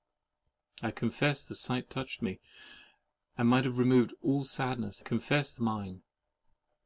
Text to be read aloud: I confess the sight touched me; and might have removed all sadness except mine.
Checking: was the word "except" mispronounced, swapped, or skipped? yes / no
yes